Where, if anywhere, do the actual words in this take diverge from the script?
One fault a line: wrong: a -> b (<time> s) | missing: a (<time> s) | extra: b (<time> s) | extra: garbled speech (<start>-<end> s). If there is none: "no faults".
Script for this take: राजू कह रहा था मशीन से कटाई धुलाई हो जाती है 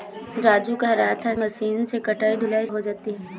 no faults